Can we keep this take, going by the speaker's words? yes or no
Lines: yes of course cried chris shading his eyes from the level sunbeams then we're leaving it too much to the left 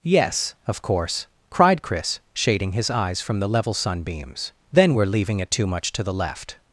yes